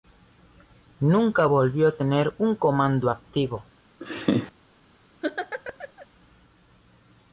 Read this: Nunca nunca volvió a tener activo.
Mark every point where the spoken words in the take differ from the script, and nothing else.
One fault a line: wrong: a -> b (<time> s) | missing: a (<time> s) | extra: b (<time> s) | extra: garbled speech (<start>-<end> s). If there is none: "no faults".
missing: nunca (1.4 s)
extra: un comando (2.4 s)